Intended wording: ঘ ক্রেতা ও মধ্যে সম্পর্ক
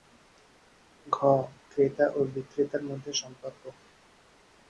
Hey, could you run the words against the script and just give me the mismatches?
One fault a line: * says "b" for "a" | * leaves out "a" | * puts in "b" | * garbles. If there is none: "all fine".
* puts in "বিক্রেতার"